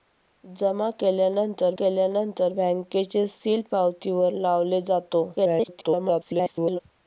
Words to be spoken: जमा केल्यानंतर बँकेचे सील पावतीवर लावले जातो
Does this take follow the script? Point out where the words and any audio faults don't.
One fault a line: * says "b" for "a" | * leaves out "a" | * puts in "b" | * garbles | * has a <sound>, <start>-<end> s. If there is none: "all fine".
* puts in "केल्यानंतर"
* garbles